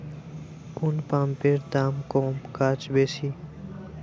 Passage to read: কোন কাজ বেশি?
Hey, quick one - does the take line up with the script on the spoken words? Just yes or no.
no